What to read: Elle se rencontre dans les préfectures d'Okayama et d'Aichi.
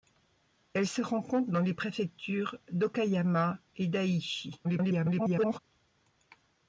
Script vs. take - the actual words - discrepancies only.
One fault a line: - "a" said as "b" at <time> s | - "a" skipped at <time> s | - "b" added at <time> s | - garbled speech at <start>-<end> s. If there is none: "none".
- garbled speech at 4.6-5.6 s